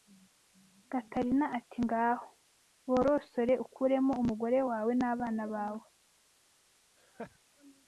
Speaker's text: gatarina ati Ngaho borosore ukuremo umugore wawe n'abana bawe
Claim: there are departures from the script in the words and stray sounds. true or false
true